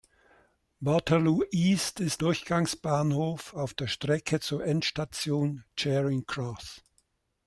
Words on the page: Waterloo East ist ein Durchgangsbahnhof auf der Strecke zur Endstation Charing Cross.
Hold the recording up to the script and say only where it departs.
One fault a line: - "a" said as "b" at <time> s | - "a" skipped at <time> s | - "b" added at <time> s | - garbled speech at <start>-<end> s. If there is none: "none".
- "ein" skipped at 2.2 s